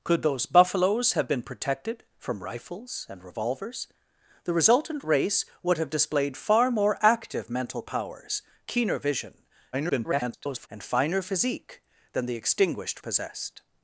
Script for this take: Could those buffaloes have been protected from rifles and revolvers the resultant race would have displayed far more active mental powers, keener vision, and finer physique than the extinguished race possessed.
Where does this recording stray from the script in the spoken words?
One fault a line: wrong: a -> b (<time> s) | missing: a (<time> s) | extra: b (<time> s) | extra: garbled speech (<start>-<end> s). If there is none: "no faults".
extra: garbled speech (9.7-10.7 s)
missing: race (13.0 s)